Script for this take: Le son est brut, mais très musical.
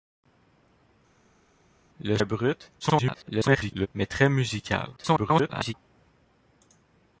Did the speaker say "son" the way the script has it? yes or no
no